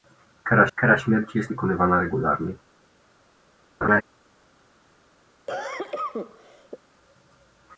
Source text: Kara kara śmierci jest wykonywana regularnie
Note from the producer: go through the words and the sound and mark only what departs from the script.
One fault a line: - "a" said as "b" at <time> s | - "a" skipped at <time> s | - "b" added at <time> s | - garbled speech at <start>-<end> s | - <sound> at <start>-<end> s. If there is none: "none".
- laugh at 3.8-4.0 s
- cough at 5.5-6.8 s